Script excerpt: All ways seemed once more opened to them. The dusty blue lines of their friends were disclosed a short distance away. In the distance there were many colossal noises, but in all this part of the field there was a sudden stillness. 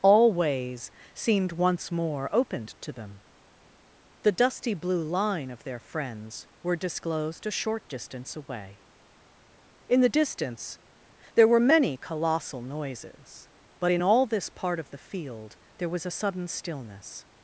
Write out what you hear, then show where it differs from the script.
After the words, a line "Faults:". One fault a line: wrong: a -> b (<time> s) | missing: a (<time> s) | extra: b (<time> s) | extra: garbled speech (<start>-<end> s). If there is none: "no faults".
All ways seemed once more opened to them. The dusty blue line of their friends were disclosed a short distance away. In the distance there were many colossal noises, but in all this part of the field there was a sudden stillness.
Faults:
wrong: lines -> line (5.0 s)